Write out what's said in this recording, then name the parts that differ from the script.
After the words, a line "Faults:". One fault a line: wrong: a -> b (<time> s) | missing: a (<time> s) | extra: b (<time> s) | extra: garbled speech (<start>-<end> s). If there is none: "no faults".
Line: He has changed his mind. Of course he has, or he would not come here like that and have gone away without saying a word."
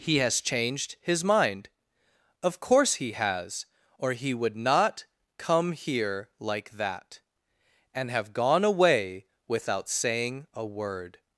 He has changed his mind. Of course he has, or he would not come here like that and have gone away without saying a word."
Faults:
no faults